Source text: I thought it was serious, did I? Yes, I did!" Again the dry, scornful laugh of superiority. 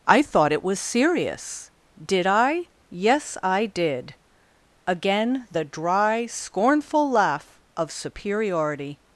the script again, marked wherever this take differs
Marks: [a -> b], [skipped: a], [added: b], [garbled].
I thought it was serious, did I? Yes, I did!" Again the dry, scornful laugh of superiority.